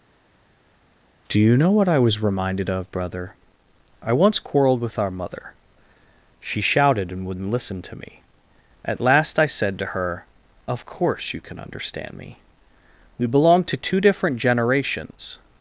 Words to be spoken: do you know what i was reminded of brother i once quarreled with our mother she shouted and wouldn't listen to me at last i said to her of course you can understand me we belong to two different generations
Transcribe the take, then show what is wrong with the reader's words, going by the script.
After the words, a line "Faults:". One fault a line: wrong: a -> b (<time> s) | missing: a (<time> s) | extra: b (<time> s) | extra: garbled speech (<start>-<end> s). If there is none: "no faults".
do you know what i was reminded of brother i once quarreled with our mother she shouted and wouldn't listen to me at last i said to her of course you can understand me we belong to two different generations
Faults:
no faults